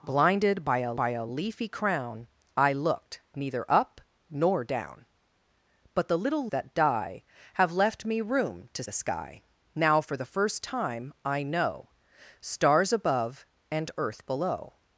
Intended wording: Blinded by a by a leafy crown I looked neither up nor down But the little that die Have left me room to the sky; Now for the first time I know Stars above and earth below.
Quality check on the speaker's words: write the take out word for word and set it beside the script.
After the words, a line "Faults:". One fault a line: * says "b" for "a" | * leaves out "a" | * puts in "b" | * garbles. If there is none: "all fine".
Blinded by a by a leafy crown I looked neither up nor down But the little that die Have left me room to the sky; Now for the first time I know Stars above and earth below.
Faults:
all fine